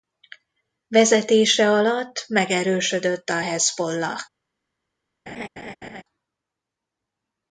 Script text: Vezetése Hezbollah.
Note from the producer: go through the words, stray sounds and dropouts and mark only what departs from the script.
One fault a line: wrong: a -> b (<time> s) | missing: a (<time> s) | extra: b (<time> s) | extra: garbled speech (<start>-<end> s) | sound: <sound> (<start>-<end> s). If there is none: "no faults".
extra: alatt megerősödött a (1.7 s)
sound: laugh (5.3-6.0 s)